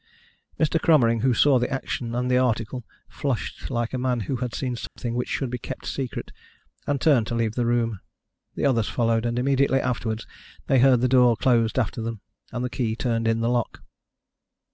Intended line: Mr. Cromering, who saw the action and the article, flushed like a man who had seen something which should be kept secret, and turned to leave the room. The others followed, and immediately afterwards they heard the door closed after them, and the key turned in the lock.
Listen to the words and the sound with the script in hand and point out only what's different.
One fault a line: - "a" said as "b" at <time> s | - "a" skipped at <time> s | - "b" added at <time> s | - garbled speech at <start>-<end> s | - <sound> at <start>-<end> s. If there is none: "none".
- dropout at 4.9-5.0 s